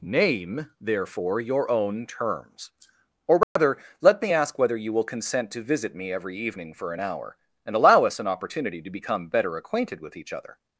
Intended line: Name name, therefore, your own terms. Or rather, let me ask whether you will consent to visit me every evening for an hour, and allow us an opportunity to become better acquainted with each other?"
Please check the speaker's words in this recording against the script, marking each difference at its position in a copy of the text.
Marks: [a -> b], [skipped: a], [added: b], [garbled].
Name [skipped: name,] therefore, your own terms. Or rather, let me ask whether you will consent to visit me every evening for an hour, and allow us an opportunity to become better acquainted with each other?"